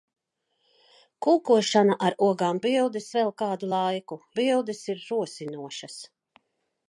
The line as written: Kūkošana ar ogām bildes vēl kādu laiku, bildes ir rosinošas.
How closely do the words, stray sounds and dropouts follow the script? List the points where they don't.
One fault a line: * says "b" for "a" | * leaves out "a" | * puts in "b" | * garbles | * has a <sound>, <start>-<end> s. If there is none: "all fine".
all fine